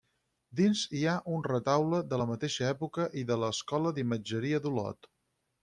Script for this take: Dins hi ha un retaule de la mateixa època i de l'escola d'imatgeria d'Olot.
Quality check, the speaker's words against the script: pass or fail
pass